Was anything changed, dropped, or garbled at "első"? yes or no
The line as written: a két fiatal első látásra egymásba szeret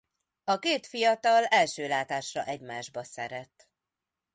no